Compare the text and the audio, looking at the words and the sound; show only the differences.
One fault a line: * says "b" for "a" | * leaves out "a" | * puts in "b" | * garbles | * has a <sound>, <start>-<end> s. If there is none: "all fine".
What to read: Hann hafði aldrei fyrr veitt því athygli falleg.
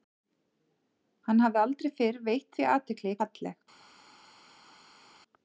all fine